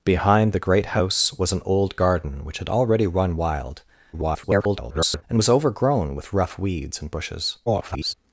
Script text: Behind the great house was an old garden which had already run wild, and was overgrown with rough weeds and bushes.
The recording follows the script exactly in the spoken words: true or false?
false